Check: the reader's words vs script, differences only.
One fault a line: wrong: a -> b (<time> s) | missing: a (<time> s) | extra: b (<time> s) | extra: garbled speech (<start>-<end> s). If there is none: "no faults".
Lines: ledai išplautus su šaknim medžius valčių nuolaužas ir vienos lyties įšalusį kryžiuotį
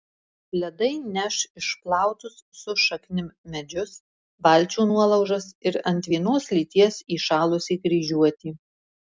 extra: neš (1.2 s)
extra: ant (5.9 s)